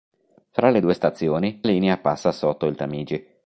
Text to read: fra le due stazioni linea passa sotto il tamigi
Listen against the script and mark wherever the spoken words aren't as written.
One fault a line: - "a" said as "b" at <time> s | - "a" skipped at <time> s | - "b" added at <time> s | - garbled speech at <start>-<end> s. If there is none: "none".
none